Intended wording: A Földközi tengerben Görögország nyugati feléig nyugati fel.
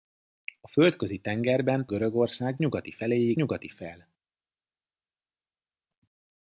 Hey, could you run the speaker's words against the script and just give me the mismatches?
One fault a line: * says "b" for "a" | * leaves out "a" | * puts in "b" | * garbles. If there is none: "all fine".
all fine